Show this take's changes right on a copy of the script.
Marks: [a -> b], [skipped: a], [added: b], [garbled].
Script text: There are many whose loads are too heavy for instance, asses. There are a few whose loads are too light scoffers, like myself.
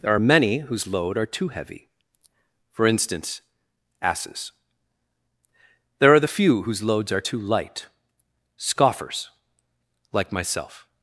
There are many whose [loads -> load] are too heavy for instance, asses. There are [a -> the] few whose loads are too light scoffers, like myself.